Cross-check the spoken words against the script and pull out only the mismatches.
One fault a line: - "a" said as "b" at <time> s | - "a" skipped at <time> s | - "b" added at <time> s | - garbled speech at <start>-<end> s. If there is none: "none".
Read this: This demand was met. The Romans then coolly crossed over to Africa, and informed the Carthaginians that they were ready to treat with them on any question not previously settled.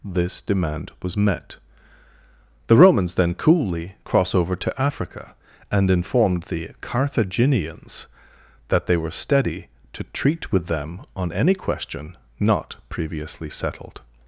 - "crossed" said as "cross" at 4.0 s
- "ready" said as "steady" at 9.1 s